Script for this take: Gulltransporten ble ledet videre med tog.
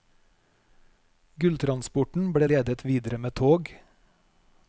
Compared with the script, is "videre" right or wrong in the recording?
right